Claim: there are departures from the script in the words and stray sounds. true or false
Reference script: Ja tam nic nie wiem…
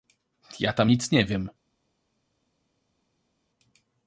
false